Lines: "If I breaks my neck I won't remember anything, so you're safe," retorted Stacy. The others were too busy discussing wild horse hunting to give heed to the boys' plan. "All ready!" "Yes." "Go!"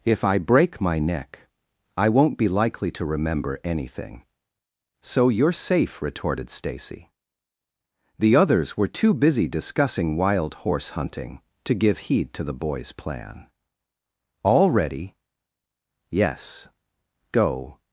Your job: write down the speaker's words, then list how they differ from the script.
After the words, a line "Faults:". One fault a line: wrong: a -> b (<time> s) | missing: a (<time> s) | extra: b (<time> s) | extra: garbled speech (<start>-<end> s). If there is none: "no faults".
"If I break my neck I won't be likely to remember anything, so you're safe," retorted Stacy. The others were too busy discussing wild horse hunting to give heed to the boys' plan. "All ready!" "Yes." "Go!"
Faults:
wrong: breaks -> break (0.4 s)
extra: be likely to (2.4 s)